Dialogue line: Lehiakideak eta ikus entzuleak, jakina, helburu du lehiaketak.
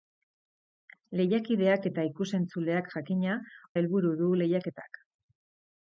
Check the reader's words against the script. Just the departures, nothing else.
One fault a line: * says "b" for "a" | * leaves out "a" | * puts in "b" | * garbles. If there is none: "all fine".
all fine